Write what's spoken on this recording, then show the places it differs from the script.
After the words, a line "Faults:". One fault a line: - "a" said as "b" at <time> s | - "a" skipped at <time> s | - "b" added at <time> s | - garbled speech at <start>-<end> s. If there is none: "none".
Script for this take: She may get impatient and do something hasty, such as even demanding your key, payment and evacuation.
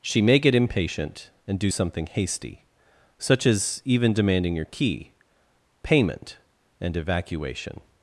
She may get impatient and do something hasty, such as even demanding your key, payment and evacuation.
Faults:
none